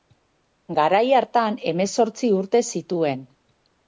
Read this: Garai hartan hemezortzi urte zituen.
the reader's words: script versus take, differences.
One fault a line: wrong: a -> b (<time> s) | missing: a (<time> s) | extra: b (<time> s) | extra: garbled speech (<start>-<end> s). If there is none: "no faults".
no faults